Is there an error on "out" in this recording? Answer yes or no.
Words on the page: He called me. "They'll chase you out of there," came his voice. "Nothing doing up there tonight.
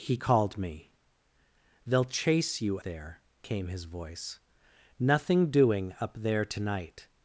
yes